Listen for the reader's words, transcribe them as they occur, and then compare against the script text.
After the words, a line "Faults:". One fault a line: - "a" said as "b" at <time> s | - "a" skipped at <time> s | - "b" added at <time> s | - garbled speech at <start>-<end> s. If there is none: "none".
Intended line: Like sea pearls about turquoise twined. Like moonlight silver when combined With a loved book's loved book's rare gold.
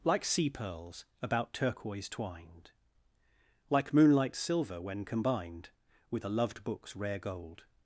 Like sea pearls about turquoise twined. Like moonlight silver when combined With a loved book's rare gold.
Faults:
- "loved book's" skipped at 7.0 s